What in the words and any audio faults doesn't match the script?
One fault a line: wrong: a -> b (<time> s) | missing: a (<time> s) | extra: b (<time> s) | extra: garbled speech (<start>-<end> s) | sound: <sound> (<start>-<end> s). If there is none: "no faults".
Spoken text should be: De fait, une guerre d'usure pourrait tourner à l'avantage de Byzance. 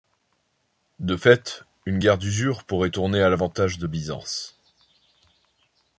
no faults